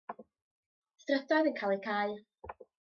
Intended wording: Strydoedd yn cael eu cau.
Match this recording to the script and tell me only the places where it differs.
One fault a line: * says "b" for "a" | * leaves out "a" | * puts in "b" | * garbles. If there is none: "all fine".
all fine